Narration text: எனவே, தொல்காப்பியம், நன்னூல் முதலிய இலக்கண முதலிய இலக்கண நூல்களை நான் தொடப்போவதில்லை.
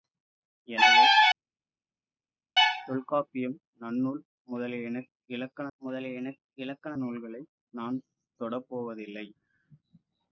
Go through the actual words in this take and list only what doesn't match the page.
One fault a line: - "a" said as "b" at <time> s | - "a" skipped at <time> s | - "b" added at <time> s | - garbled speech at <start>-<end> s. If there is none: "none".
none